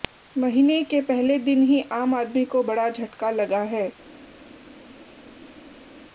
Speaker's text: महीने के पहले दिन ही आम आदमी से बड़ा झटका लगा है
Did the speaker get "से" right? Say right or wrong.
wrong